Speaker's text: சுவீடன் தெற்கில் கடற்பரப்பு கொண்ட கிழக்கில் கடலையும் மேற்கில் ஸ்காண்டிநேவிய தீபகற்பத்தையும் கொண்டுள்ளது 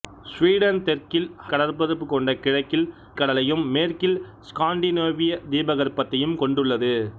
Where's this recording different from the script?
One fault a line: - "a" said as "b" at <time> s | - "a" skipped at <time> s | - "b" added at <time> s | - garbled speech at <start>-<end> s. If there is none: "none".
none